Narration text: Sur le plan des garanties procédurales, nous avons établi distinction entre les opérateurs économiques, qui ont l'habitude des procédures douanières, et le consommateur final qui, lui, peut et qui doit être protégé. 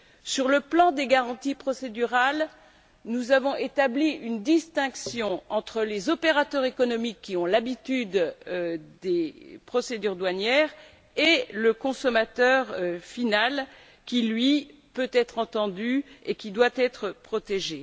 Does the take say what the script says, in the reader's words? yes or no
no